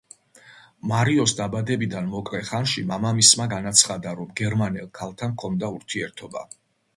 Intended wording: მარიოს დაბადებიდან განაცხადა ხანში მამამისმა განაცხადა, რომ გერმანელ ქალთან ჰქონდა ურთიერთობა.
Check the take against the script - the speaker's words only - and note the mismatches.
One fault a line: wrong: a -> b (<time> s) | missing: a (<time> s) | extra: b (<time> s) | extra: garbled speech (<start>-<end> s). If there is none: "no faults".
wrong: განაცხადა -> მოკლე (2.1 s)